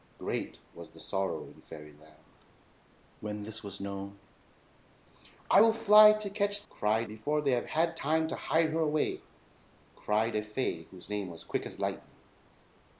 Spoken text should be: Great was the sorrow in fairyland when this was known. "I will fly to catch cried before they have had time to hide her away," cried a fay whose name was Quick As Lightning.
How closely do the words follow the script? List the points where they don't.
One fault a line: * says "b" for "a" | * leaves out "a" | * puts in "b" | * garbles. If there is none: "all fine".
all fine